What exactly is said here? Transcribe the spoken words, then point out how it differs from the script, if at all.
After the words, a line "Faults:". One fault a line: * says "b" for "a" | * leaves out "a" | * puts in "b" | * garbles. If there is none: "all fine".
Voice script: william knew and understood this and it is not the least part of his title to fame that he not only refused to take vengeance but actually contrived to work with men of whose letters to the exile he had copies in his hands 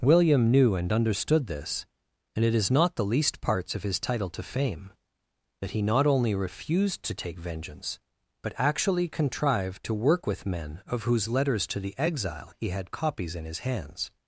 william knew and understood this and it is not the least parts of his title to fame that he not only refused to take vengeance but actually contrived to work with men of whose letters to the exile he had copies in his hands
Faults:
* says "parts" for "part"